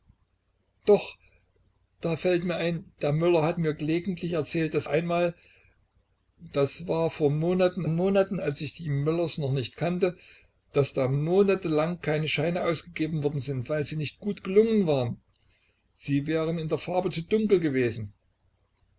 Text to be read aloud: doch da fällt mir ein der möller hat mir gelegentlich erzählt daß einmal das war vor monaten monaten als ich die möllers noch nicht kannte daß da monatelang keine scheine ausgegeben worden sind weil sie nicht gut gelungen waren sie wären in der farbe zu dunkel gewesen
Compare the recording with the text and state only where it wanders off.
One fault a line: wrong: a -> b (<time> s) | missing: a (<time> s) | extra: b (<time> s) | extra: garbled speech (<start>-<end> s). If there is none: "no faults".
no faults